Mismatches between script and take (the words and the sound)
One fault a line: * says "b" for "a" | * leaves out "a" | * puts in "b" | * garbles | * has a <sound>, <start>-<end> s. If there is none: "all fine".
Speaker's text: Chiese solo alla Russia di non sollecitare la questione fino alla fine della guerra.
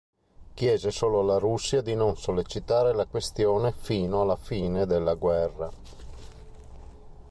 all fine